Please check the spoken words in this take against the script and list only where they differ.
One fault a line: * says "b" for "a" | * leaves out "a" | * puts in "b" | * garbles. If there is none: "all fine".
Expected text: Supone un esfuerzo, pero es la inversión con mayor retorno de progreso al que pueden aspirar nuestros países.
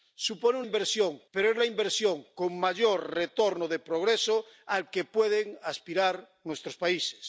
* says "inversión" for "esfuerzo"